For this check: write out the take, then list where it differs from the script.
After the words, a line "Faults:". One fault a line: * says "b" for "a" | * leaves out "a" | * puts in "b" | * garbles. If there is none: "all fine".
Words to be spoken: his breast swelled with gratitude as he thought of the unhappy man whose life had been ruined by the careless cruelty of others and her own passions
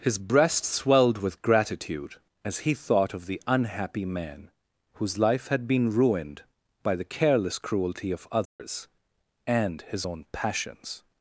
his breast swelled with gratitude as he thought of the unhappy man whose life had been ruined by the careless cruelty of others and his own passions
Faults:
* says "his" for "her"